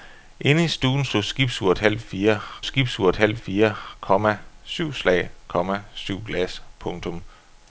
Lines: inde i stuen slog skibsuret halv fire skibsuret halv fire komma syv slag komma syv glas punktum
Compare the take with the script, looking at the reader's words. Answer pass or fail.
pass